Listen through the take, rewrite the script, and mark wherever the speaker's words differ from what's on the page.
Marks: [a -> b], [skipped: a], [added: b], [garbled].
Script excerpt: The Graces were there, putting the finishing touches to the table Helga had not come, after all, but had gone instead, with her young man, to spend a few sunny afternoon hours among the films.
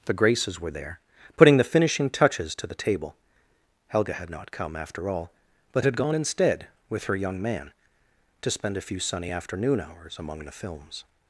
The Graces were there, putting the finishing touches to the table Helga had not come, after all, but had gone instead, with her young man, to spend a few sunny afternoon hours among the films.